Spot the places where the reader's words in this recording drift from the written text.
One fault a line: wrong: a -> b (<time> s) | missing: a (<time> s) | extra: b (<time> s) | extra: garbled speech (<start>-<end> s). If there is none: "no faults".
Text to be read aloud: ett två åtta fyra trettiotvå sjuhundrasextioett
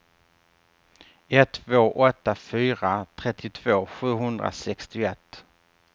no faults